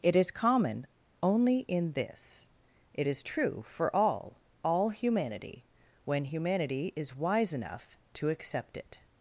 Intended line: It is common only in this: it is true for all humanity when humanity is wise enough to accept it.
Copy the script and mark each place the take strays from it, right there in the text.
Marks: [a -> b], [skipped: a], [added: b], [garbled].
It is common only in this: it is true for all [added: all] humanity when humanity is wise enough to accept it.